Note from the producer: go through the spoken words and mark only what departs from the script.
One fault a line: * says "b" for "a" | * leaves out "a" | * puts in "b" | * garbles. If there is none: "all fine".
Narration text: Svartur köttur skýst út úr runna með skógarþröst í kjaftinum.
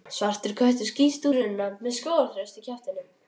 * leaves out "út"